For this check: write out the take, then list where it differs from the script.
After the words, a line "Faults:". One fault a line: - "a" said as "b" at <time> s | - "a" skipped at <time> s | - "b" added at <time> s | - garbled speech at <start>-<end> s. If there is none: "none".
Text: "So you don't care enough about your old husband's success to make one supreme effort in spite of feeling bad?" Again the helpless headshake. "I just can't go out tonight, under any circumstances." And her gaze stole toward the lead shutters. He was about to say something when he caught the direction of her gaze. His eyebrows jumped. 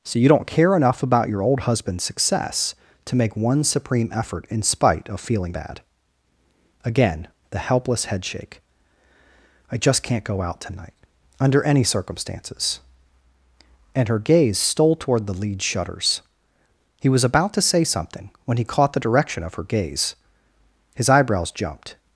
"So you don't care enough about your old husband's success to make one supreme effort in spite of feeling bad?" Again the helpless headshake. "I just can't go out tonight, under any circumstances." And her gaze stole toward the lead shutters. He was about to say something when he caught the direction of her gaze. His eyebrows jumped.
Faults:
none